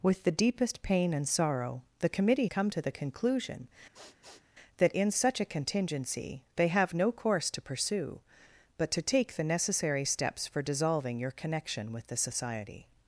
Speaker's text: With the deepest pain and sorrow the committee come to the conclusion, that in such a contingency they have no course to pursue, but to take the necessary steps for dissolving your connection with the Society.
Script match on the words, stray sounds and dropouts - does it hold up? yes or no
no